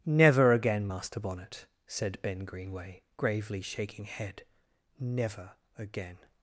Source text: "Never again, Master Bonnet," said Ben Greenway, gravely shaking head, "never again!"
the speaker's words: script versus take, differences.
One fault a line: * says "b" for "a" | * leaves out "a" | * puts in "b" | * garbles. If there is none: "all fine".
all fine